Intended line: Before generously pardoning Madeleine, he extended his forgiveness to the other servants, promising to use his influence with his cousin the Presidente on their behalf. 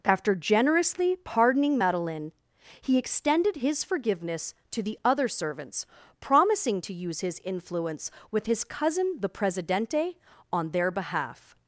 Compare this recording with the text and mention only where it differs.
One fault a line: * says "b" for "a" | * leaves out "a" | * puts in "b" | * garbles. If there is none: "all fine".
* says "After" for "Before"